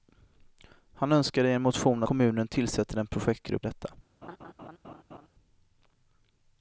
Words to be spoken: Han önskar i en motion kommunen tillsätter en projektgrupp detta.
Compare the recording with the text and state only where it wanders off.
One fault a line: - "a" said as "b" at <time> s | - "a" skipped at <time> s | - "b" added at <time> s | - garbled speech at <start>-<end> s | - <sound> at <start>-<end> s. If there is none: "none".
- laugh at 4.2-5.3 s